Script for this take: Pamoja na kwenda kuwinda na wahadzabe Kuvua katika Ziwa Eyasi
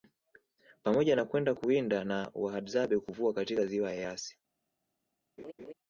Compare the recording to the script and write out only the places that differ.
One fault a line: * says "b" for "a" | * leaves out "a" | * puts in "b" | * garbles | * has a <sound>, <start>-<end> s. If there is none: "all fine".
* has a laugh, 5.4-5.7 s